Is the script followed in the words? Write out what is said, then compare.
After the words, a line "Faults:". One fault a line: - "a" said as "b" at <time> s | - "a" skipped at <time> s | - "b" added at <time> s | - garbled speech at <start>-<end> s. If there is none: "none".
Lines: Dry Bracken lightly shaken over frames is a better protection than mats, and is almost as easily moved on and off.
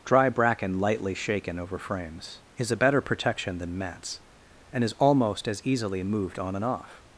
Dry Bracken lightly shaken over frames is a better protection than mats, and is almost as easily moved on and off.
Faults:
none